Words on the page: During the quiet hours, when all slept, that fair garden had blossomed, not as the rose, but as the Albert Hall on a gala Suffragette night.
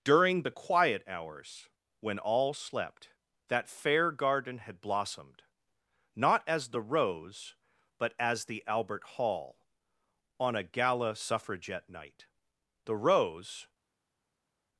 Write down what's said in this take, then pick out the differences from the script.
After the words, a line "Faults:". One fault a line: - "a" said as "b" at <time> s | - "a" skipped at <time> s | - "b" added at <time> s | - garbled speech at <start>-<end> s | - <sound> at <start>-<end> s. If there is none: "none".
During the quiet hours, when all slept, that fair garden had blossomed, not as the rose, but as the Albert Hall on a gala Suffragette night. The rose
Faults:
- "The rose" added at 12.8 s